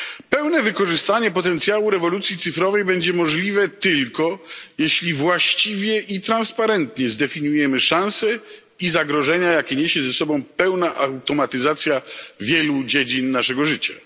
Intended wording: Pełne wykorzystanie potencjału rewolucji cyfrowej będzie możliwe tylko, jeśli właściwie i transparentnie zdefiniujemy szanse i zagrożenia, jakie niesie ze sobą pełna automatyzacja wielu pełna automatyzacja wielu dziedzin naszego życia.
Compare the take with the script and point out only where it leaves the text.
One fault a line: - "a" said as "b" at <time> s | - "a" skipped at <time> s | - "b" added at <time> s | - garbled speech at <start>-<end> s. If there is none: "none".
- "pełna automatyzacja wielu" skipped at 12.8 s